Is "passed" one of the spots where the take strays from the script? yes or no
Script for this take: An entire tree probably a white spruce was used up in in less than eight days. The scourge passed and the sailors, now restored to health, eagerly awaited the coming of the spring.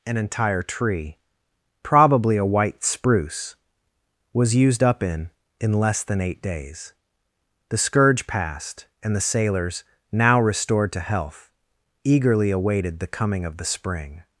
no